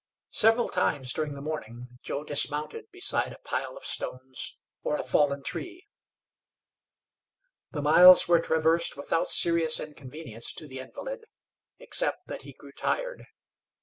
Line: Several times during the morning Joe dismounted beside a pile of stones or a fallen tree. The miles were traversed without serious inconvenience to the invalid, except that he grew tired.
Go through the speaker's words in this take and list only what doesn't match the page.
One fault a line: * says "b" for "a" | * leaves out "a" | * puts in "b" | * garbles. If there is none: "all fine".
all fine